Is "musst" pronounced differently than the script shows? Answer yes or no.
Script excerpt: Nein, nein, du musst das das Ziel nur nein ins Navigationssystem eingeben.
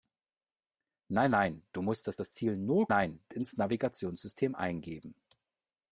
no